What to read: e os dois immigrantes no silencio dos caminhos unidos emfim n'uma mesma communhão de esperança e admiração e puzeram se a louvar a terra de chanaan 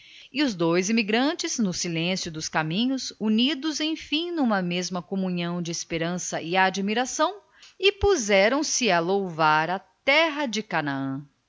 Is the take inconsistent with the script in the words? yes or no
no